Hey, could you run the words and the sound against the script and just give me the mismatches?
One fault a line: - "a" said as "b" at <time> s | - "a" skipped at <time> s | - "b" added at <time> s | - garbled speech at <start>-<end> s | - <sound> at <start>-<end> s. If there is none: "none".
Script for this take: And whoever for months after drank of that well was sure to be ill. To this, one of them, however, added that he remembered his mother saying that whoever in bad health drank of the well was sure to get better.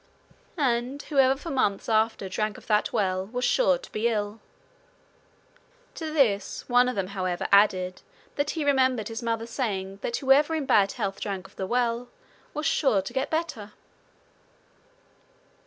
none